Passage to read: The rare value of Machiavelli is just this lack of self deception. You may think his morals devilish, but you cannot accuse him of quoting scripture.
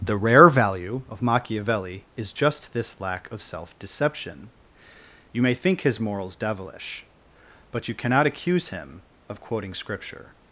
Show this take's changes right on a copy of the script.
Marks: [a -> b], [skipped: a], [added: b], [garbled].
The rare value of Machiavelli is just this lack of self deception. You may think his morals devilish, but you cannot accuse him of quoting scripture.